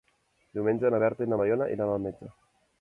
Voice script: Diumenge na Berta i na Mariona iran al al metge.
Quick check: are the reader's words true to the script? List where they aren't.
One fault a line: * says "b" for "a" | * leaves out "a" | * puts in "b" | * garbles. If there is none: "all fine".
* leaves out "al"